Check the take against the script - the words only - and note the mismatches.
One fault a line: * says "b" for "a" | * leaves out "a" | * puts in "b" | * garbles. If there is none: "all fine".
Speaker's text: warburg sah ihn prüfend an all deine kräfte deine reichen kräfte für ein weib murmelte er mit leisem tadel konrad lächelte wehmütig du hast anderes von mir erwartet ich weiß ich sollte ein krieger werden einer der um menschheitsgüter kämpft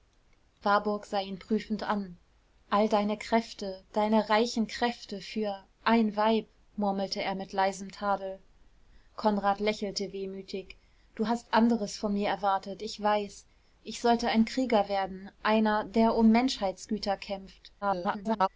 * garbles